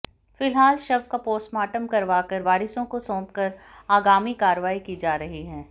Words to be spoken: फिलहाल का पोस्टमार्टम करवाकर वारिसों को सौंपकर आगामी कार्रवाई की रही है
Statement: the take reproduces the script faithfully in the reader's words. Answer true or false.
false